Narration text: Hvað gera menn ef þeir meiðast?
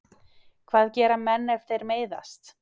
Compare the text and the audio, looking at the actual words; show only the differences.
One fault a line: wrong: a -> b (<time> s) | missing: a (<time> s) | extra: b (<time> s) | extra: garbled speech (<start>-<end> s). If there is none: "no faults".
no faults